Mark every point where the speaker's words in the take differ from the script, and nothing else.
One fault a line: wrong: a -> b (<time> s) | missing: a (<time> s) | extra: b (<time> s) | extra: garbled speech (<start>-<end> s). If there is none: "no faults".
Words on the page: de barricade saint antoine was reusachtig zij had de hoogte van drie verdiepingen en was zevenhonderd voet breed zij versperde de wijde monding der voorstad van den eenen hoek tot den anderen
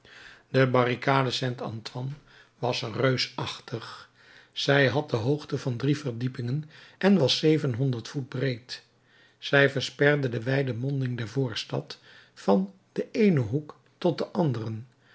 no faults